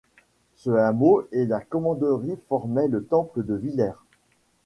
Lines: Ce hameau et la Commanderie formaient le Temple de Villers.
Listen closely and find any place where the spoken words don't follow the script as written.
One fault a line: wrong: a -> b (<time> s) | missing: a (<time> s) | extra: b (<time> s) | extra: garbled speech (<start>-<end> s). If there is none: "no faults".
no faults